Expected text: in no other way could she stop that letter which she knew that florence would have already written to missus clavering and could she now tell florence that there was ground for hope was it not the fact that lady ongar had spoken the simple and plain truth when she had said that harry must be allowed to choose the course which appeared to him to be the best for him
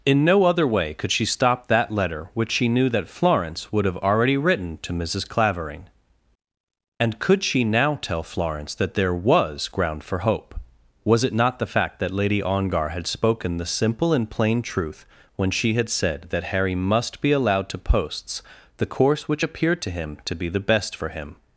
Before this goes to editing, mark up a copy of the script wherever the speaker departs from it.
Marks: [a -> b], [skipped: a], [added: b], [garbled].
in no other way could she stop that letter which she knew that florence would have already written to missus clavering and could she now tell florence that there was ground for hope was it not the fact that lady ongar had spoken the simple and plain truth when she had said that harry must be allowed to [choose -> posts] the course which appeared to him to be the best for him